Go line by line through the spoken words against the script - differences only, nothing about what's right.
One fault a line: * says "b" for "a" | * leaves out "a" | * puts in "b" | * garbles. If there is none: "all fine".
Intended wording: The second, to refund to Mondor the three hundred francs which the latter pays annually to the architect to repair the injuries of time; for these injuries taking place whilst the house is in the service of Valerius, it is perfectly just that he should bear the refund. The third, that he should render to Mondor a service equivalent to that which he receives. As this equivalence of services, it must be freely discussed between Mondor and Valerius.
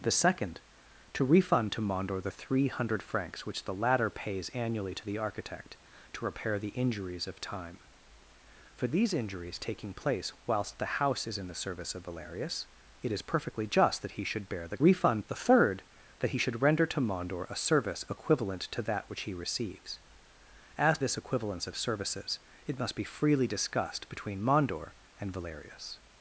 all fine